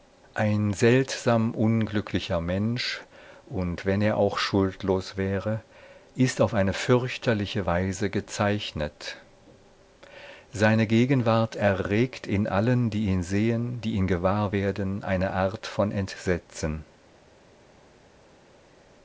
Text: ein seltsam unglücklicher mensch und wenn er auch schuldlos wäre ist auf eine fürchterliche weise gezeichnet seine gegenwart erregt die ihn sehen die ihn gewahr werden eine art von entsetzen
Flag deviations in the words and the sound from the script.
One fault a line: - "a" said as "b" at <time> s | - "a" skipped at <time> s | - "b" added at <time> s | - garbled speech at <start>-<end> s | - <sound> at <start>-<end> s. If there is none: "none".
- "in allen" added at 12.3 s